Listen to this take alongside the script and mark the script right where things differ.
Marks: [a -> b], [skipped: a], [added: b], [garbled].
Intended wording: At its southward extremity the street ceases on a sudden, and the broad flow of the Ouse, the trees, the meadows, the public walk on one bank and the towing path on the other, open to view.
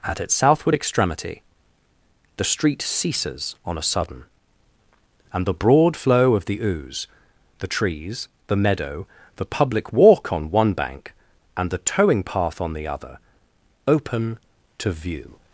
At its southward extremity the street ceases on a sudden, and the broad flow of the Ouse, the trees, the [meadows, -> meadow] the public walk on one bank and the towing path on the other, open to view.